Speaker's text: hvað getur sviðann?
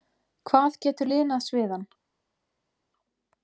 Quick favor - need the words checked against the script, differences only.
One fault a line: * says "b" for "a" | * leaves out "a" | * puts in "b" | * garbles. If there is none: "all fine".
* puts in "linað"